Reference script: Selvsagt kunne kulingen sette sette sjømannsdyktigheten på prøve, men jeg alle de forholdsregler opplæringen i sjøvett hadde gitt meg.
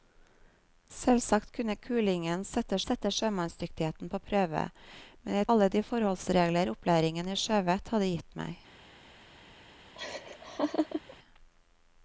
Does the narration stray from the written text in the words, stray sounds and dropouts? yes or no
yes